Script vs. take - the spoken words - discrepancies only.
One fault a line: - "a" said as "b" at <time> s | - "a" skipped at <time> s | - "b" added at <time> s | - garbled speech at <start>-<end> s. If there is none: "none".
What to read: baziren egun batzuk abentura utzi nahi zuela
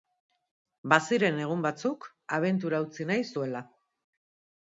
none